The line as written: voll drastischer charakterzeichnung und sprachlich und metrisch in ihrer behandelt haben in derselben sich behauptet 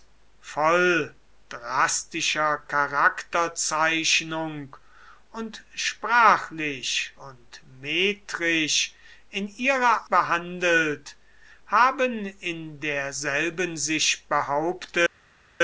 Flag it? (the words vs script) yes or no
no